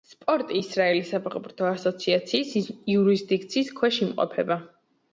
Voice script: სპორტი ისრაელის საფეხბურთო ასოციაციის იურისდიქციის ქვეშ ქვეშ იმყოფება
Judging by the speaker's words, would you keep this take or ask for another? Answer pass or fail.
fail